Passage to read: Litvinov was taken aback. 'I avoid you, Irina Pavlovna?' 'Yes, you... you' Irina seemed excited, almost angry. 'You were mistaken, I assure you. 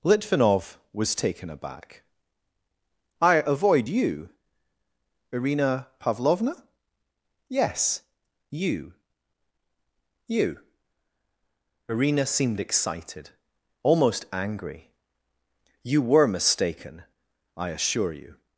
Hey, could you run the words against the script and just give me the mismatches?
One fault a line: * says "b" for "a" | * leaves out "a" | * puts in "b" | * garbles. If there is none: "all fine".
all fine